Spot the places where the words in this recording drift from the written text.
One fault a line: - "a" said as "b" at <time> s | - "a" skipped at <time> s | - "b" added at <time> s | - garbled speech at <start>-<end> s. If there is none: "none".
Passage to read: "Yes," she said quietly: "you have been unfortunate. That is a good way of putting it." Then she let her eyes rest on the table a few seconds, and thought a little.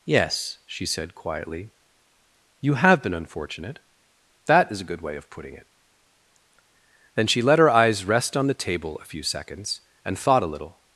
none